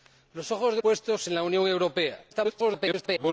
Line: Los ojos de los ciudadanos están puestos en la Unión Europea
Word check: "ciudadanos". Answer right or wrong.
wrong